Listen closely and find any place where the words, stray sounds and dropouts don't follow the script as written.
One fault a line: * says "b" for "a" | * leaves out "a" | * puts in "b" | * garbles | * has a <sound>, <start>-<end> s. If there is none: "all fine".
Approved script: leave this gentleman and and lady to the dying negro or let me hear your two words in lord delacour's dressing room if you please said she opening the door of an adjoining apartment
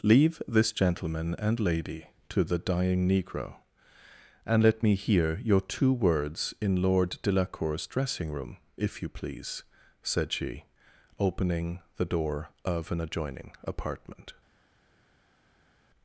* leaves out "and"
* says "and" for "or"